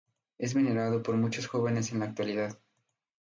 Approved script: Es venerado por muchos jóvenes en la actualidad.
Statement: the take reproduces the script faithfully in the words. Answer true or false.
true